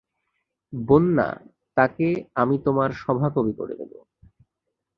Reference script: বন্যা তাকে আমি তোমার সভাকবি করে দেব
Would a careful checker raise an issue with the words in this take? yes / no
no